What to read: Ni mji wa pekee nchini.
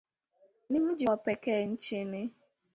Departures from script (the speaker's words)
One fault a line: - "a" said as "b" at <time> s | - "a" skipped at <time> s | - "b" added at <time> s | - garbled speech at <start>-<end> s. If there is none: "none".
none